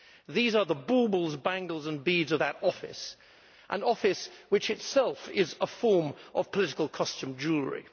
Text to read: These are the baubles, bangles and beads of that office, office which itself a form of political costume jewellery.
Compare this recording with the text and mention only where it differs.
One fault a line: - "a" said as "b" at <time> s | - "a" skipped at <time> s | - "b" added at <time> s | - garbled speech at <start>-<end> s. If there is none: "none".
- "an" added at 3.7 s
- "is" added at 5.3 s